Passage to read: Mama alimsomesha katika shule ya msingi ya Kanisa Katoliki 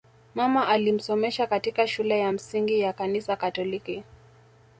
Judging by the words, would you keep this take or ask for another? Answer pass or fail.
pass